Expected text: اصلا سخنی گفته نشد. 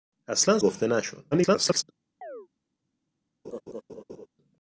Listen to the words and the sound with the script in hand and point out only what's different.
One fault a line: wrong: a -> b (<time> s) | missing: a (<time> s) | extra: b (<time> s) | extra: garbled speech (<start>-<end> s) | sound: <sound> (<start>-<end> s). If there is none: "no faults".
missing: سخنی (0.6 s)
extra: garbled speech (1.3-1.8 s)
sound: chirp (2.2-2.5 s)
sound: laugh (3.4-4.3 s)